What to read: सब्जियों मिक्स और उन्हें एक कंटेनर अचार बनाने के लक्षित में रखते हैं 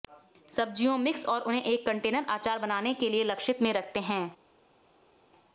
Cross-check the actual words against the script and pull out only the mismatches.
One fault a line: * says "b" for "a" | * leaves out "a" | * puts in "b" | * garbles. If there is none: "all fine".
* puts in "लिए"